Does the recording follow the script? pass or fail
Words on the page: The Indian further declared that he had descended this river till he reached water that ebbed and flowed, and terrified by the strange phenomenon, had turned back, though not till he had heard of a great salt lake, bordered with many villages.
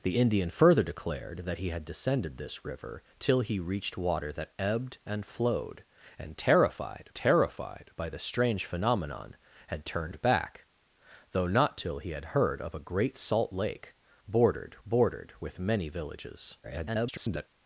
fail